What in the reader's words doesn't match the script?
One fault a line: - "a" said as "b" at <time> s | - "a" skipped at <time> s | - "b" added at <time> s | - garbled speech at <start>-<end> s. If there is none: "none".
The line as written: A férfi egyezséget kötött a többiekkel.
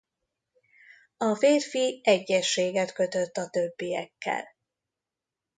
none